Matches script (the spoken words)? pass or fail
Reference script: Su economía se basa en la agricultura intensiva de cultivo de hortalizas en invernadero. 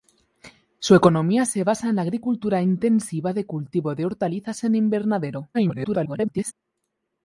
fail